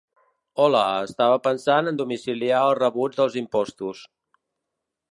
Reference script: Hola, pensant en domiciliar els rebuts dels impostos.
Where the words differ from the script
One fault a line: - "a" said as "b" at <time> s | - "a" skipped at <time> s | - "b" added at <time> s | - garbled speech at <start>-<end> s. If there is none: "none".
- "estava" added at 1.1 s